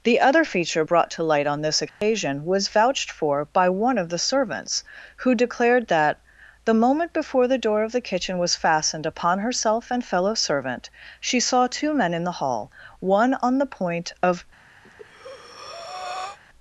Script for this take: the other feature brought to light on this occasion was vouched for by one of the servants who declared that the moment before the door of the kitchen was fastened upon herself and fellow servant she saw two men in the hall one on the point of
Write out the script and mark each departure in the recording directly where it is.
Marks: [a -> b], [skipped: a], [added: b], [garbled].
the other feature brought to light on this occasion was vouched for by one of the servants who declared that the moment before the door of the kitchen was fastened upon herself and fellow servant she saw two men in the hall one on the point of